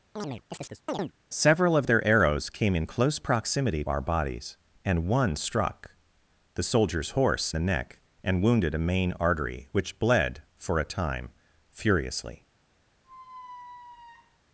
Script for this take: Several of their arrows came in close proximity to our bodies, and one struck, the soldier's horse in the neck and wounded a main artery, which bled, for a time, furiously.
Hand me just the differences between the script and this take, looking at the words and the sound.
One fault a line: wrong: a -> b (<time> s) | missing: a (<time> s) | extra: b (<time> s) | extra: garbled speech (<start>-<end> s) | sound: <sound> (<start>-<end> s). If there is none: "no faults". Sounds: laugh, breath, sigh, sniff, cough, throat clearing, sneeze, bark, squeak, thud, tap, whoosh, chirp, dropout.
sound: chirp (0.2-1.1 s)
missing: to (3.8 s)
missing: in (7.5 s)
sound: squeak (13.0-14.4 s)